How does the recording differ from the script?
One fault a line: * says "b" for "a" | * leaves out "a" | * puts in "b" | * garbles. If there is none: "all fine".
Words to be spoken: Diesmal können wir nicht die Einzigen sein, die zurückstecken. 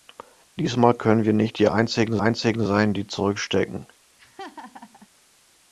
* puts in "Einzigen"